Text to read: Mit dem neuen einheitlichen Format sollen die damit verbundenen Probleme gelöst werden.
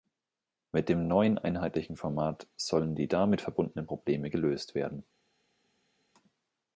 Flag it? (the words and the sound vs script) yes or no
no